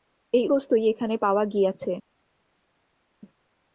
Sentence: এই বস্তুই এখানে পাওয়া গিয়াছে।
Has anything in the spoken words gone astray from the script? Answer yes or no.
no